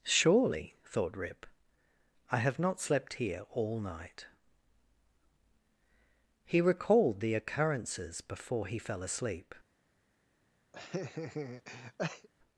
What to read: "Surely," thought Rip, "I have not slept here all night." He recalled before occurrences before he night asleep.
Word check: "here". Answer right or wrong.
right